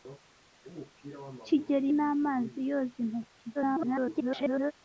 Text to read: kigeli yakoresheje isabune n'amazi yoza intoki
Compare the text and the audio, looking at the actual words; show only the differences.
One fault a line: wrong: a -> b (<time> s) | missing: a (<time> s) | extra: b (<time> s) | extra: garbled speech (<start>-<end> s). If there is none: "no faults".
missing: yakoresheje isabune (1.9 s)
extra: garbled speech (3.5-4.7 s)